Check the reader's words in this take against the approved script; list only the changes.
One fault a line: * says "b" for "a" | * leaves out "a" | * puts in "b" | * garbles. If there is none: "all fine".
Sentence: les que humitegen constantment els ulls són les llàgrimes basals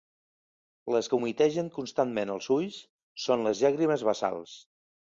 all fine